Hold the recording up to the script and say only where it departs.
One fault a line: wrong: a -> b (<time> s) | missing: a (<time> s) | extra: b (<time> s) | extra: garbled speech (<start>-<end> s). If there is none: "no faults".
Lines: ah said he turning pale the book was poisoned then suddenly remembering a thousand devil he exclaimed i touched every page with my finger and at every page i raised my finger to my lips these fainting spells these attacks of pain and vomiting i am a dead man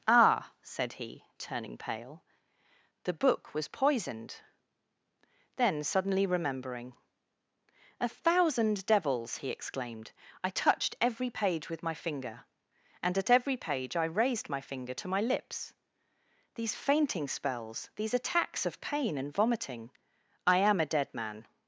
wrong: devil -> devils (8.9 s)